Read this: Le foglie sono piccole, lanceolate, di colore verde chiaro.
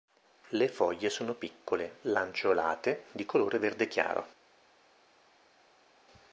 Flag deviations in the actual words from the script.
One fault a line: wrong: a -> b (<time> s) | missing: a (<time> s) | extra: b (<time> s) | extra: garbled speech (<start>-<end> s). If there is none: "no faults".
no faults